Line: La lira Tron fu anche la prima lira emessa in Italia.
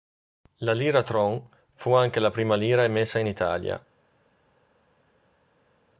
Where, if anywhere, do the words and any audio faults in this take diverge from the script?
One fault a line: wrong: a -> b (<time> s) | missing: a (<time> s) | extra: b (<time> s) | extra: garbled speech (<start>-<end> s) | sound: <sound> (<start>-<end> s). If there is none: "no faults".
no faults